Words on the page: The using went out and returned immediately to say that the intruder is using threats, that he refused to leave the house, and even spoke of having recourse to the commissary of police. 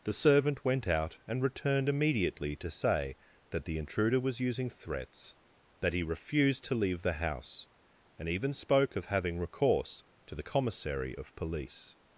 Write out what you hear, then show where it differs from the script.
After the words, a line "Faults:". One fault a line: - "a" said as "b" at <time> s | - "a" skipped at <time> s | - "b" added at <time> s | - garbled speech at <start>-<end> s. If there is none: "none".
The servant went out and returned immediately to say that the intruder was using threats, that he refused to leave the house, and even spoke of having recourse to the commissary of police.
Faults:
- "using" said as "servant" at 0.1 s
- "is" said as "was" at 4.2 s